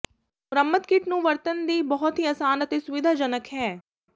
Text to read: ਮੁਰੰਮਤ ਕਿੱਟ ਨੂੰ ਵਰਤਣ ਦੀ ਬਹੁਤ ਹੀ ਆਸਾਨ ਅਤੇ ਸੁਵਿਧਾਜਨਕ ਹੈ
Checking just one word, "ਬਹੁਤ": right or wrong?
right